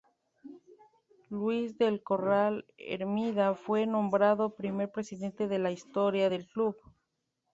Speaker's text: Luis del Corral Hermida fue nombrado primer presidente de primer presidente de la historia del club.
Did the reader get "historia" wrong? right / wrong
right